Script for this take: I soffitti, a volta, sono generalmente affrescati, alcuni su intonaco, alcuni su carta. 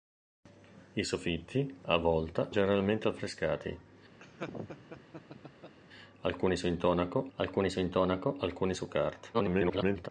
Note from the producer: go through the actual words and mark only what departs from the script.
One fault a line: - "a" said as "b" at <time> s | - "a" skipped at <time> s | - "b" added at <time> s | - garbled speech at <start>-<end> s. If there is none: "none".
- "sono" skipped at 2.5 s
- "intonaco alcuni su" added at 7.8 s
- garbled speech at 9.3-10.1 s